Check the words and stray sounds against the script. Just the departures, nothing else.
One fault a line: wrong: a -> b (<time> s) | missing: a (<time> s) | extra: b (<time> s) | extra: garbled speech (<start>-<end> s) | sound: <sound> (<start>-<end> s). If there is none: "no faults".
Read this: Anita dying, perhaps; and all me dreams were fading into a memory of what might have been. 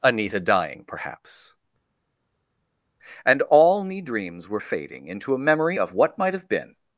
no faults